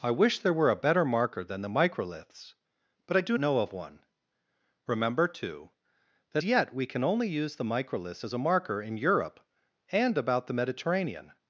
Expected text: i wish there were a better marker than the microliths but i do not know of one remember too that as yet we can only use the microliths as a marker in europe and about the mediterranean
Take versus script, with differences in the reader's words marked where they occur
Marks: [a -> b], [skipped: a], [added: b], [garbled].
i wish there were a better marker than the microliths but i do [skipped: not] know of one remember too that [skipped: as] yet we can only use the microliths as a marker in europe and about the mediterranean